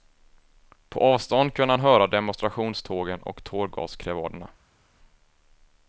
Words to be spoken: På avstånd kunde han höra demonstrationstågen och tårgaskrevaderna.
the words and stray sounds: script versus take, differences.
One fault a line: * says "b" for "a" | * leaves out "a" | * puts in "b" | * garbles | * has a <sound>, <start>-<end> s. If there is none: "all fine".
all fine